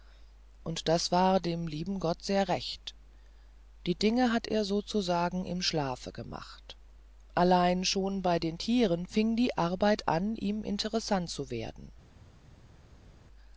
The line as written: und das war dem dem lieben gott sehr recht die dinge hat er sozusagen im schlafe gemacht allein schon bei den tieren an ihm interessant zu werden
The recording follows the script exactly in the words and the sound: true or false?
false